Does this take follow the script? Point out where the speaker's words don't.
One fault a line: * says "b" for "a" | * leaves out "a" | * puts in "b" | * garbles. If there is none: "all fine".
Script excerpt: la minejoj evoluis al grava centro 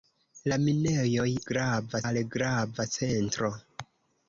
* says "grava" for "evoluis"